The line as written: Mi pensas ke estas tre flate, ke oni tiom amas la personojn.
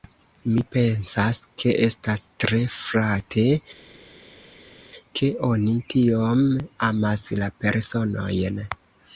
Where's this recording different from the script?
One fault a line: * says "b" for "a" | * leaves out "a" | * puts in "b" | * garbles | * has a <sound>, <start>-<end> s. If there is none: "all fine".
all fine